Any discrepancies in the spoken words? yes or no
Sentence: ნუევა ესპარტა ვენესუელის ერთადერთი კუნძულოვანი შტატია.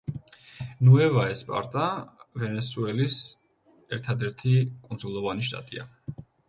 no